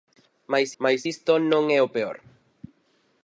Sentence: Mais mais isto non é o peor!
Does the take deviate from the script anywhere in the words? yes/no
no